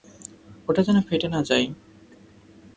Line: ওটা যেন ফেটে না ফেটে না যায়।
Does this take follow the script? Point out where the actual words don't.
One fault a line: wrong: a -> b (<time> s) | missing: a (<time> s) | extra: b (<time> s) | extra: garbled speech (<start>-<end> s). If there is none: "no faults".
missing: ফেটে না (1.4 s)